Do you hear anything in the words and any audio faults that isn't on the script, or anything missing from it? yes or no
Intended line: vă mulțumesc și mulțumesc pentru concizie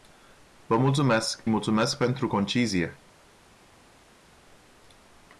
yes